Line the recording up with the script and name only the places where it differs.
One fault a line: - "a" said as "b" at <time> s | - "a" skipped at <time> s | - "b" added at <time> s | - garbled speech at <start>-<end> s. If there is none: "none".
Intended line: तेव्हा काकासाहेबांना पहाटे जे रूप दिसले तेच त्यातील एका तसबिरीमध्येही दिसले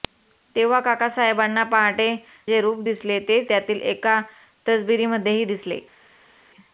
none